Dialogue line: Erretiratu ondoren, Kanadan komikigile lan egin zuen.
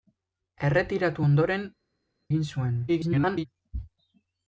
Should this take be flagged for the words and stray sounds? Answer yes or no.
yes